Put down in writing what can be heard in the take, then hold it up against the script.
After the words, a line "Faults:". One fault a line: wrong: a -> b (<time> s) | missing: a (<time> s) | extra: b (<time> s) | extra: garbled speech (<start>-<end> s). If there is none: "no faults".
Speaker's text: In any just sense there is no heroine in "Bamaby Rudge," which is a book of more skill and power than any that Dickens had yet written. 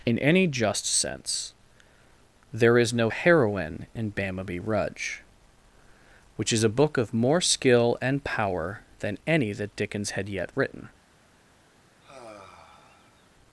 In any just sense there is no heroine in "Bamaby Rudge," which is a book of more skill and power than any that Dickens had yet written.
Faults:
no faults